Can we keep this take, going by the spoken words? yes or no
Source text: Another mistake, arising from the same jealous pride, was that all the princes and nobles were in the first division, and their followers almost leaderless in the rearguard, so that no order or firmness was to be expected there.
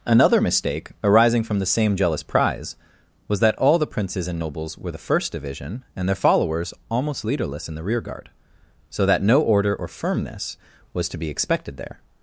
no